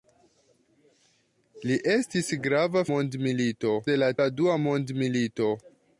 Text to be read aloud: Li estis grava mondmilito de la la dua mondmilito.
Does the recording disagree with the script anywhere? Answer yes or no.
no